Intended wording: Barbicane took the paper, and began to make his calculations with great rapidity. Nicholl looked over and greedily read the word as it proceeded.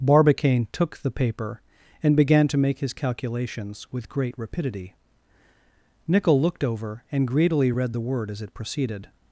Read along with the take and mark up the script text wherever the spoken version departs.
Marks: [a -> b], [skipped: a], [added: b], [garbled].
Barbicane took the paper, and began to make his calculations with great rapidity. Nicholl looked over and greedily read the word as it proceeded.